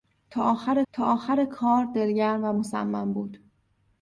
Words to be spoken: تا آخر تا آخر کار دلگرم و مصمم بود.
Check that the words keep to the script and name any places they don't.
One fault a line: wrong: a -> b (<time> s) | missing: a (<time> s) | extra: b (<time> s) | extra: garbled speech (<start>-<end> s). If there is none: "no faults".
no faults